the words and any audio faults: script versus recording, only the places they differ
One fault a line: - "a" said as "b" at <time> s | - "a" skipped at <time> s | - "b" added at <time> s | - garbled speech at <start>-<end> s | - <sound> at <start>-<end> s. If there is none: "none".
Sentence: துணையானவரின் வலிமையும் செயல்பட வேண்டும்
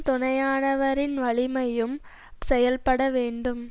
none